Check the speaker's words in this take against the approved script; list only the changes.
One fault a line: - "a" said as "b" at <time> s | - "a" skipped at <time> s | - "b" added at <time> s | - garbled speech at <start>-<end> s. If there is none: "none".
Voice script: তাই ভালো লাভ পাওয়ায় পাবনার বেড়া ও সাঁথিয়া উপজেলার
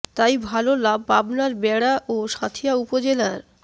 - "পাওয়ায়" skipped at 1.0 s